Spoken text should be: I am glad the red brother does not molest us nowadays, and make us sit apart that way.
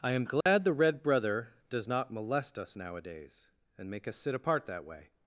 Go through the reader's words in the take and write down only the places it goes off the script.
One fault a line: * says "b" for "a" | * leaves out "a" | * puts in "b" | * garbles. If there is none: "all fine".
all fine